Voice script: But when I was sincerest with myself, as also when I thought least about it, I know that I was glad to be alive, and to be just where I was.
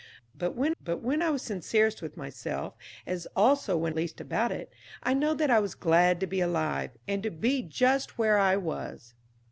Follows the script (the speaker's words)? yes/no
no